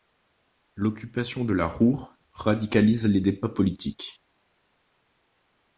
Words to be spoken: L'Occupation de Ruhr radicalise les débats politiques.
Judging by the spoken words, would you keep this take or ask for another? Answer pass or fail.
fail